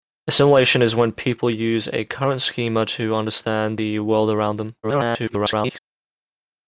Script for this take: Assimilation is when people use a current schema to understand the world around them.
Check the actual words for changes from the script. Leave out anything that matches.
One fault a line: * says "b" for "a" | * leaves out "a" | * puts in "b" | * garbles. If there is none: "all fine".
* garbles